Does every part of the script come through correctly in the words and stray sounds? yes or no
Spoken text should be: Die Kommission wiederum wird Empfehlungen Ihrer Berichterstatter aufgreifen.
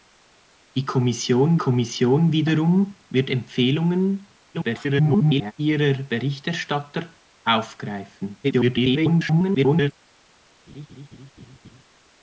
no